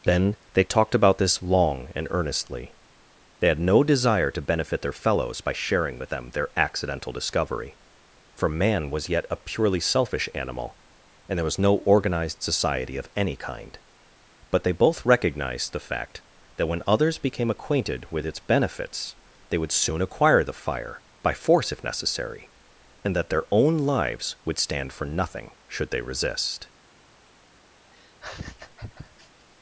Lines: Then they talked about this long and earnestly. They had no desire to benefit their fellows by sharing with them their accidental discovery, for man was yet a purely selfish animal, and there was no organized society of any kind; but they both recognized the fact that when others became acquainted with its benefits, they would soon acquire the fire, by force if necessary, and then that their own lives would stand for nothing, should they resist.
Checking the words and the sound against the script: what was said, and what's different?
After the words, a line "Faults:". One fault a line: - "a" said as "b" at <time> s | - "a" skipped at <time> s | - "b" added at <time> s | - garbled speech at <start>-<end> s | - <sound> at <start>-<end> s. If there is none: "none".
Then they talked about this long and earnestly. They had no desire to benefit their fellows by sharing with them their accidental discovery, for man was yet a purely selfish animal, and there was no organized society of any kind; but they both recognized the fact that when others became acquainted with its benefits, they would soon acquire the fire, by force if necessary, and that their own lives would stand for nothing, should they resist.
Faults:
- "then" skipped at 23.1 s
- laugh at 27.9-29.5 s